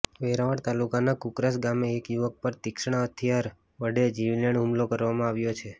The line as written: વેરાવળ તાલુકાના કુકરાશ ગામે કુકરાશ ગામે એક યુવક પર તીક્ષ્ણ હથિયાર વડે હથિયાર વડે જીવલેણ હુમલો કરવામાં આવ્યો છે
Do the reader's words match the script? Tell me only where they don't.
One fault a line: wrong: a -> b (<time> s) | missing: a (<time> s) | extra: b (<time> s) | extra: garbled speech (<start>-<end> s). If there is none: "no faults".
missing: કુકરાશ ગામે (1.9 s)
missing: હથિયાર વડે (4.1 s)